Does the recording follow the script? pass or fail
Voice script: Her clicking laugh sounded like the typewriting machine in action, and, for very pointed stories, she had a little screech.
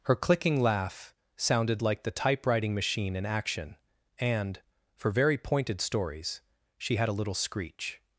pass